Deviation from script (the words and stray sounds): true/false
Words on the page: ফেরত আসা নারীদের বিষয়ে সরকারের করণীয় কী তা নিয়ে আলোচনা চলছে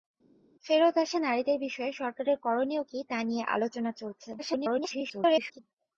true